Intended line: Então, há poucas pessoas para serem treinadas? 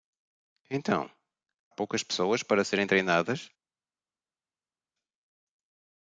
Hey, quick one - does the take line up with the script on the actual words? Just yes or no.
no